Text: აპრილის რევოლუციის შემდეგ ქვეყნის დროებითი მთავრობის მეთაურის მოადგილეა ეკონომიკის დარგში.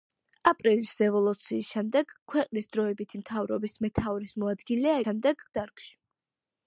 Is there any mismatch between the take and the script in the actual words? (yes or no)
yes